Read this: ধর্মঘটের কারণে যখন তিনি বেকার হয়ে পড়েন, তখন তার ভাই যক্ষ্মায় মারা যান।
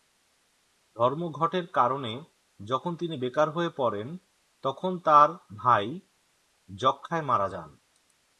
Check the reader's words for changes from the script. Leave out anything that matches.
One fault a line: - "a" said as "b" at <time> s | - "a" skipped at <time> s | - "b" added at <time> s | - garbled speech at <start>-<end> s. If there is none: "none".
none